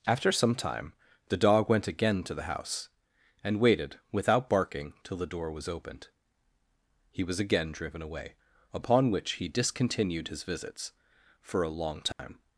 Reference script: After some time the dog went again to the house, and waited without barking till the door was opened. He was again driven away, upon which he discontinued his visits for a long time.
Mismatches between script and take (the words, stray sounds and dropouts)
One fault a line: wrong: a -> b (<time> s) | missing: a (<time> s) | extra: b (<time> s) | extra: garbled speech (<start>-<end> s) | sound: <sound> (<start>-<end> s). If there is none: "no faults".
sound: dropout (12.1-12.2 s)